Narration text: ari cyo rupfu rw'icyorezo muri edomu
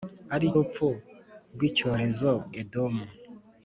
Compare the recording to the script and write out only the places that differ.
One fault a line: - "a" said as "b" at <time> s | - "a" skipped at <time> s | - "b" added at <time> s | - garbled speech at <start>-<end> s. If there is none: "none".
- "cyo" skipped at 0.5 s
- "muri" skipped at 2.3 s